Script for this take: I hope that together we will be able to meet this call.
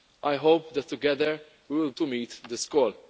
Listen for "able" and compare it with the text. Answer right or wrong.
wrong